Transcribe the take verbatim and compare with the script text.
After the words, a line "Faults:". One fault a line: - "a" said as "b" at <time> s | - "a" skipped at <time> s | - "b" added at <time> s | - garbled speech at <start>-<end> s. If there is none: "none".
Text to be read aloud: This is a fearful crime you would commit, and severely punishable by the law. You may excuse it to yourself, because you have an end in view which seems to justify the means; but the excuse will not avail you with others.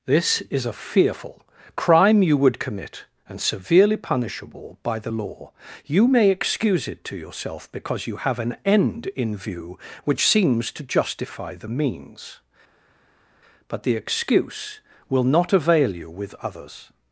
This is a fearful crime you would commit, and severely punishable by the law. You may excuse it to yourself, because you have an end in view which seems to justify the means; but the excuse will not avail you with others.
Faults:
none